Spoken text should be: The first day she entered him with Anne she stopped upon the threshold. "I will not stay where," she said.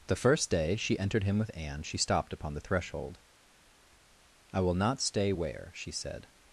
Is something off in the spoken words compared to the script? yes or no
no